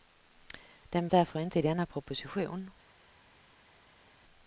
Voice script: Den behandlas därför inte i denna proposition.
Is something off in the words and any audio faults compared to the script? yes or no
yes